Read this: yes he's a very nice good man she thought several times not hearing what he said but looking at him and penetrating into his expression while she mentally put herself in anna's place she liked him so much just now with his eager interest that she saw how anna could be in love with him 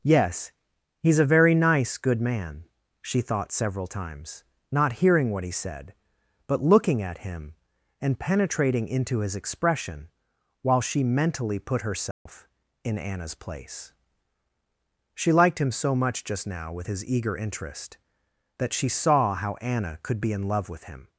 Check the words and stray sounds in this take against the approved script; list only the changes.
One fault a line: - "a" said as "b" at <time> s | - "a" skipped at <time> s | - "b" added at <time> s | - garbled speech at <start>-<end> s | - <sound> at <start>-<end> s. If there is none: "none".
- dropout at 12.1-12.3 s